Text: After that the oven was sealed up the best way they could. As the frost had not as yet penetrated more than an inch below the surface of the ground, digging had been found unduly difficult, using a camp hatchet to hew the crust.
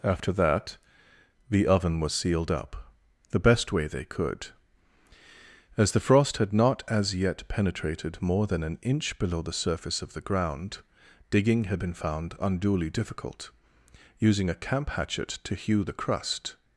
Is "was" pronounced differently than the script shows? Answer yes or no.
no